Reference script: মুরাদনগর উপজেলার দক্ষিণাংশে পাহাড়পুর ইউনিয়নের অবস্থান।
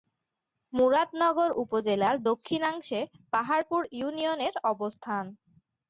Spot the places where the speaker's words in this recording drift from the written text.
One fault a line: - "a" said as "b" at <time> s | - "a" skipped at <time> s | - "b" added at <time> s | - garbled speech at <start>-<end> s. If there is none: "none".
none